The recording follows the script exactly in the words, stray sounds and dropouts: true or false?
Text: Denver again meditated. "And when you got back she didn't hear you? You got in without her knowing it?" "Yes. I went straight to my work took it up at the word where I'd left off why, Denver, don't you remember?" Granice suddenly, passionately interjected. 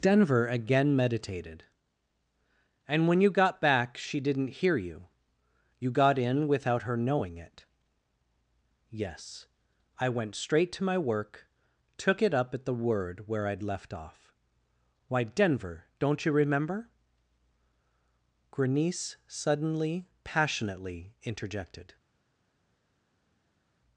true